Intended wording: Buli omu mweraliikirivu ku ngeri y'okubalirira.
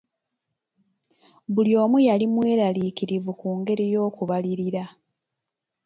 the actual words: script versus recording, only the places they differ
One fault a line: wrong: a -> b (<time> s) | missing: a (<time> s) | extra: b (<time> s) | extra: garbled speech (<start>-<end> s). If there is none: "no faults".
extra: yali (2.1 s)